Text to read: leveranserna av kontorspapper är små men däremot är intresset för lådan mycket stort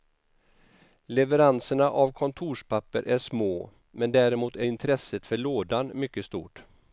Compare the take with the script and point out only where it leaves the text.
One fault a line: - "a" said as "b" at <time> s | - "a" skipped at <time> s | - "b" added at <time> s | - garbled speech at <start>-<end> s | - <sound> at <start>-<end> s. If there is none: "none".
none